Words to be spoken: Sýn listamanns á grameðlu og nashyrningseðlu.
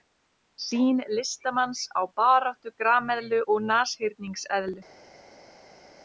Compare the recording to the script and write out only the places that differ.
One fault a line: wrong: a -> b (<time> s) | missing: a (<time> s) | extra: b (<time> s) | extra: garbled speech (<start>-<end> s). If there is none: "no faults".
extra: baráttu (2.2 s)